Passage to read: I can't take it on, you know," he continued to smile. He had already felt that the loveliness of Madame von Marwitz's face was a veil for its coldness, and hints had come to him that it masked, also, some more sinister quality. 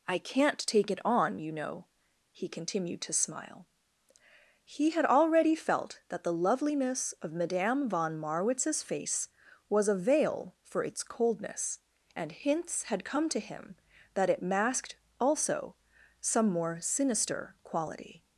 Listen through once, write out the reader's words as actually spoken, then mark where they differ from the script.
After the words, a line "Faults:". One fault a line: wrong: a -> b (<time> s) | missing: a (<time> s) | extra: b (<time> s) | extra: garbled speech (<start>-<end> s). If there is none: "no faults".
I can't take it on, you know," he continued to smile. He had already felt that the loveliness of Madame von Marwitz's face was a veil for its coldness, and hints had come to him that it masked, also, some more sinister quality.
Faults:
no faults